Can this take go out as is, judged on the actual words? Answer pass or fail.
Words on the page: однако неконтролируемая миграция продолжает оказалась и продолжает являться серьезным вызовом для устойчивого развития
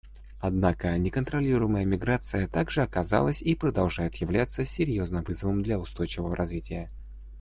fail